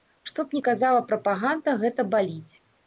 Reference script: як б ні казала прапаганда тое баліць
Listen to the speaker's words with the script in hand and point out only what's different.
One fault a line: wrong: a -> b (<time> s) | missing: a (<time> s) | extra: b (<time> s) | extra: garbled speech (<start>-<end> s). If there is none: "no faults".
wrong: як -> што (0.3 s)
wrong: тое -> гэта (1.9 s)